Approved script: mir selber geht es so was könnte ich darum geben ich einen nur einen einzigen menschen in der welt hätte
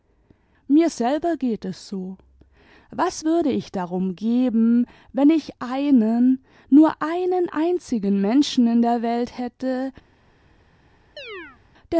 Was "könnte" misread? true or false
true